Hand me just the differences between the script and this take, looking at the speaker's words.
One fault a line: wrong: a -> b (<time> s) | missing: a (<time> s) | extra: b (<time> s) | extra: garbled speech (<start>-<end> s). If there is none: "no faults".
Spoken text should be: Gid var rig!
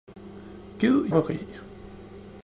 no faults